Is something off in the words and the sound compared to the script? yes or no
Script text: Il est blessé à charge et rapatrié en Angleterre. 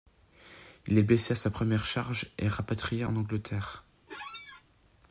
yes